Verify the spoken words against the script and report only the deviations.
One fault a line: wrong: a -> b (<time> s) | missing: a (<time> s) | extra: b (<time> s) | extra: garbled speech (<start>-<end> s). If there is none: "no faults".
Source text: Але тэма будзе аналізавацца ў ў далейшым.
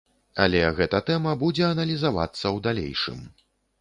extra: гэта (0.8 s)
missing: ў (2.6 s)